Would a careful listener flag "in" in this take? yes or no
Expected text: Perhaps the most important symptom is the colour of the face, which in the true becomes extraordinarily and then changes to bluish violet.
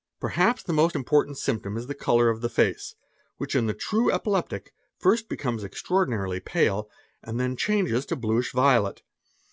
no